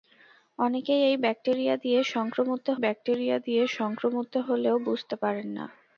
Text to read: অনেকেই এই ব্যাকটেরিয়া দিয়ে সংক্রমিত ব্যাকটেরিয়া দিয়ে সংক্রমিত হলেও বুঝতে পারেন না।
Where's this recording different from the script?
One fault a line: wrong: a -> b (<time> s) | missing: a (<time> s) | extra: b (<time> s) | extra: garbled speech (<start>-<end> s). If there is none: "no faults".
no faults